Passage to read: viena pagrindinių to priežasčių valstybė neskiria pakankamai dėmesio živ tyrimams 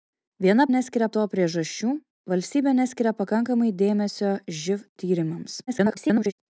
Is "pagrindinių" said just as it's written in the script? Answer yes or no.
no